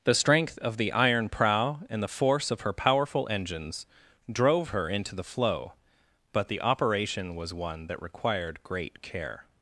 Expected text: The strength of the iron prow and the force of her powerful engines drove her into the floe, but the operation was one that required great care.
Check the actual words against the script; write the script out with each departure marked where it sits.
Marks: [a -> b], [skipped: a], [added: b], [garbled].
The strength of the iron prow and the force of her powerful engines drove her into the floe, but the operation was one that required great care.